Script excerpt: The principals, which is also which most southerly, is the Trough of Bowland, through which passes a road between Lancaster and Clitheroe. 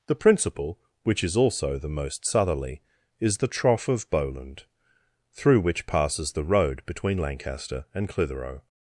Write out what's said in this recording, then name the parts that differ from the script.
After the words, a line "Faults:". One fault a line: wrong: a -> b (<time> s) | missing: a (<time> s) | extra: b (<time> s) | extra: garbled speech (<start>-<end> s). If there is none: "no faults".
The principal, which is also the most southerly, is the Trough of Bowland, through which passes the road between Lancaster and Clitheroe.
Faults:
wrong: principals -> principal (0.1 s)
wrong: which -> the (1.8 s)
wrong: a -> the (6.3 s)